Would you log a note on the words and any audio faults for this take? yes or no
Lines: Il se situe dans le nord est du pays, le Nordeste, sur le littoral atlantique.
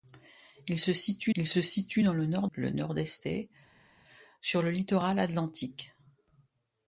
yes